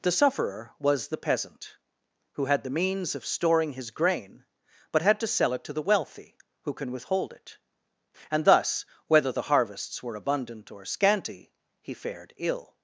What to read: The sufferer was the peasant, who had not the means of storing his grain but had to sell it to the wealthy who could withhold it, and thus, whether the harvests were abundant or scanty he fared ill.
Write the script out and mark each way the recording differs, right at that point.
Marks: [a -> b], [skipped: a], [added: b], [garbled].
The sufferer was the peasant, who had [skipped: not] the means of storing his grain but had to sell it to the wealthy who [could -> can] withhold it, and thus, whether the harvests were abundant or scanty he fared ill.